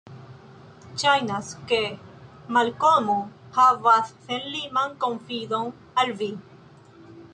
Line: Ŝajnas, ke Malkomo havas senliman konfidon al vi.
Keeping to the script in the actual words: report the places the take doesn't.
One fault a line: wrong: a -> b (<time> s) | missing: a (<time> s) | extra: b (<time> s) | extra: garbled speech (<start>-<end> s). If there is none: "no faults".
no faults